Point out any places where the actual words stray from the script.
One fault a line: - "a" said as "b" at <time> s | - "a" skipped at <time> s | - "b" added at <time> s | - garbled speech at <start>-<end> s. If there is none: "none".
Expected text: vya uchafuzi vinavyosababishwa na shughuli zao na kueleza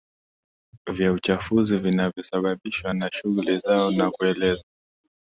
none